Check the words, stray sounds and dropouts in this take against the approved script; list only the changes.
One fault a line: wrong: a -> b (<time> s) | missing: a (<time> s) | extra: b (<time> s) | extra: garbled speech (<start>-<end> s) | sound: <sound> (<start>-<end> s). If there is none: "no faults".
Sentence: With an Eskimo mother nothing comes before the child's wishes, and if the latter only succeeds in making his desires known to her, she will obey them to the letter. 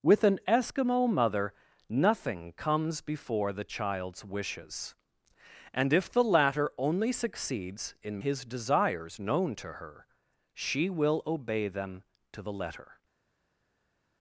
missing: making (8.2 s)